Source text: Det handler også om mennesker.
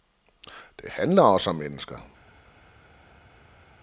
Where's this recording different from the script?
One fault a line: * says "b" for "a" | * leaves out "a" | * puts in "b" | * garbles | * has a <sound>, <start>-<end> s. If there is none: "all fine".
all fine